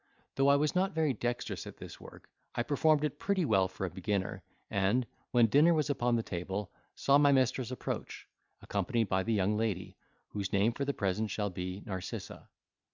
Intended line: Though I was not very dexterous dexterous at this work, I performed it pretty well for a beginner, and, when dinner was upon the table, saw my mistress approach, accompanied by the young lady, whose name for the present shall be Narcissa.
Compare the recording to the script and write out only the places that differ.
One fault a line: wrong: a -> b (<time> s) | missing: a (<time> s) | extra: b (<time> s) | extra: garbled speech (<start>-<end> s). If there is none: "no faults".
missing: dexterous (1.7 s)